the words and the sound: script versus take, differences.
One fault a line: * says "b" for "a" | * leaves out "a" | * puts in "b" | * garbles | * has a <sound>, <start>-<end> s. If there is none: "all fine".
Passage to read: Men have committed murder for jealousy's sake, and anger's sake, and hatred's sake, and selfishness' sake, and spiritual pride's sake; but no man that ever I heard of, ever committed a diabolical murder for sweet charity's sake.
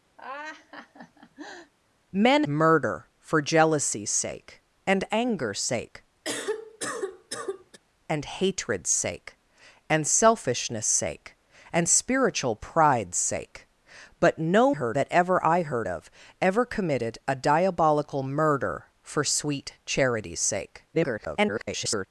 * has a laugh, 0.2-1.7 s
* leaves out "have committed"
* has a cough, 6.2-7.8 s
* says "heard" for "man"
* garbles